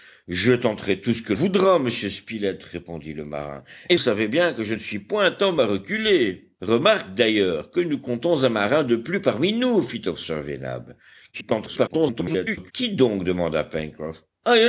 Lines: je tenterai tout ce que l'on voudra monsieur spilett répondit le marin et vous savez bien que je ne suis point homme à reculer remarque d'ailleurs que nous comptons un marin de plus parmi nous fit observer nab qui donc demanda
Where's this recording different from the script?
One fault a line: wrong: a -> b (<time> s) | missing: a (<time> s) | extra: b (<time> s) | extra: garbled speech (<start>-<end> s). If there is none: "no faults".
missing: l'on (1.3 s)
missing: vous (4.0 s)
extra: garbled speech (11.3-12.7 s)